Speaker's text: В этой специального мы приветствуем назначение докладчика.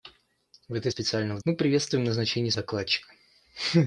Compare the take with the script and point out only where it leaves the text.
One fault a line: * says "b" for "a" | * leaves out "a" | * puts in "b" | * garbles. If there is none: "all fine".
all fine